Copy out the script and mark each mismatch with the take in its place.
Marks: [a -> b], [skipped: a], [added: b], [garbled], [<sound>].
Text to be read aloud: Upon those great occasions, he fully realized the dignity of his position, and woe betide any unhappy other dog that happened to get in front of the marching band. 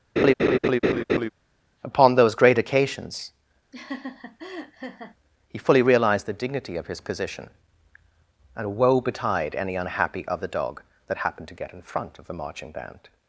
[laugh] Upon those great occasions, [laugh] he fully realized the dignity of his position, and woe betide any unhappy other dog that happened to get in front of the marching band.